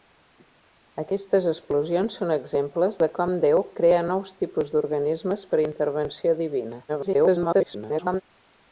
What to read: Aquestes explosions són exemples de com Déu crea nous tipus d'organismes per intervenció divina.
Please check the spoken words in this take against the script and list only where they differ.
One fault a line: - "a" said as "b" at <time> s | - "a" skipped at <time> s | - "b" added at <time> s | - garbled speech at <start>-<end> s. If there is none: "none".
- garbled speech at 6.9-8.2 s